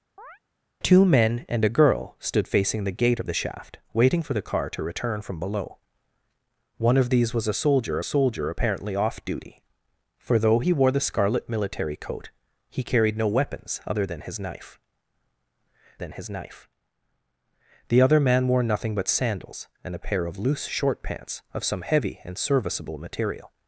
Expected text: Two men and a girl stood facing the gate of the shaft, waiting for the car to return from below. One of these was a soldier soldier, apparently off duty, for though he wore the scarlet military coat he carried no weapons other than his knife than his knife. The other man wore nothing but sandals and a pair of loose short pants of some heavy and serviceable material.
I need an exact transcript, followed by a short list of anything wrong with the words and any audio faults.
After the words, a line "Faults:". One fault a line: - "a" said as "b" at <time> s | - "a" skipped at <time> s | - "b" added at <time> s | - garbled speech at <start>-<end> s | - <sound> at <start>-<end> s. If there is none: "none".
Two men and a girl stood facing the gate of the shaft, waiting for the car to return from below. One of these was a soldier soldier, apparently off duty, for though he wore the scarlet military coat he carried no weapons other than his knife than his knife. The other man wore nothing but sandals and a pair of loose short pants of some heavy and serviceable material.
Faults:
- chirp at 0.2-0.4 s